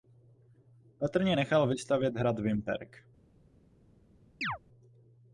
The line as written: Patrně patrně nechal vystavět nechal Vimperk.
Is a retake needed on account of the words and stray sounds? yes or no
yes